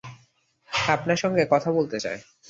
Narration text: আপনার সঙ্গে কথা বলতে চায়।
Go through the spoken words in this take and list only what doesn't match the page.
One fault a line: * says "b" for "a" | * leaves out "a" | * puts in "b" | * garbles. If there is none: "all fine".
all fine